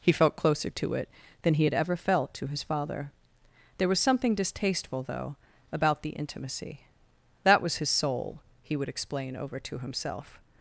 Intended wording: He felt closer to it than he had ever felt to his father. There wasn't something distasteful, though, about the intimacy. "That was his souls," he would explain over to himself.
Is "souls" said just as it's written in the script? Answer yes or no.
no